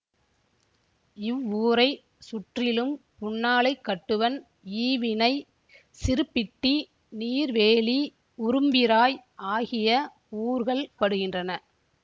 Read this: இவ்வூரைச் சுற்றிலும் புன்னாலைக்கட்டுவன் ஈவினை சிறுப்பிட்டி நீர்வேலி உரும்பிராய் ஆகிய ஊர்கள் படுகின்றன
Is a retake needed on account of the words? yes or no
no